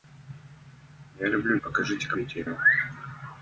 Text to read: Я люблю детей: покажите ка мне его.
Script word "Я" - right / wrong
right